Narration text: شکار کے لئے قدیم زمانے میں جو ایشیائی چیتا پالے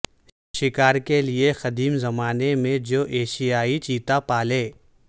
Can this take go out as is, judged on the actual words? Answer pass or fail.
pass